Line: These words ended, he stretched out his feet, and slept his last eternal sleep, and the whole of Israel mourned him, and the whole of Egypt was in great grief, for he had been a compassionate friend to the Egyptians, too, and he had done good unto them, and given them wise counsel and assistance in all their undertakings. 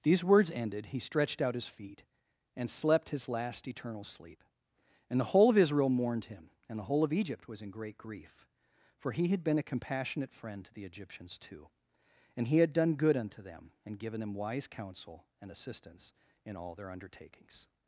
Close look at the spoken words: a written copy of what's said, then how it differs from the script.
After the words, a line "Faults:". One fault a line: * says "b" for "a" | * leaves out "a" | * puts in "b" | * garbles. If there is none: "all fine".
These words ended, he stretched out his feet, and slept his last eternal sleep, and the whole of Israel mourned him, and the whole of Egypt was in great grief, for he had been a compassionate friend to the Egyptians, too, and he had done good unto them, and given them wise counsel and assistance in all their undertakings.
Faults:
all fine